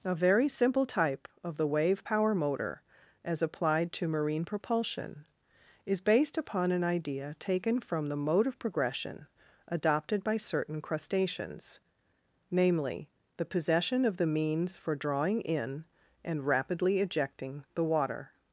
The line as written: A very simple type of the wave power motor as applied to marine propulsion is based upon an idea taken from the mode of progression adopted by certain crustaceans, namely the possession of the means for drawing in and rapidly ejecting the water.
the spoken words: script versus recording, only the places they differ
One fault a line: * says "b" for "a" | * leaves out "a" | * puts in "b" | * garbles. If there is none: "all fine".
all fine